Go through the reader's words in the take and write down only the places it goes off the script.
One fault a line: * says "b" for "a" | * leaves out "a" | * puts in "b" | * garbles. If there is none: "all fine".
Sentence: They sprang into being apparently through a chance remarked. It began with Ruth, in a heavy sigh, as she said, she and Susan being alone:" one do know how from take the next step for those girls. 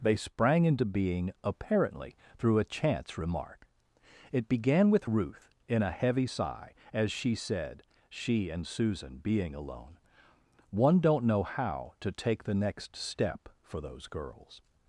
* says "remark" for "remarked"
* says "don't" for "do"
* says "to" for "from"